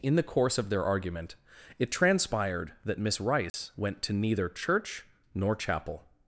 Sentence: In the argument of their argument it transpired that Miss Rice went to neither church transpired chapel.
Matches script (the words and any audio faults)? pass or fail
fail